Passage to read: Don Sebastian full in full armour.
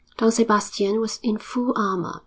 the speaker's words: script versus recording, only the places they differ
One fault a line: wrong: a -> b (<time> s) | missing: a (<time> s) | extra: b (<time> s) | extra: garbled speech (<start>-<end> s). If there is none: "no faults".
wrong: full -> was (1.0 s)